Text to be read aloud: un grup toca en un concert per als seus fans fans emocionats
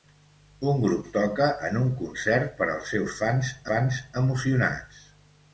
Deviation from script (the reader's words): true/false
false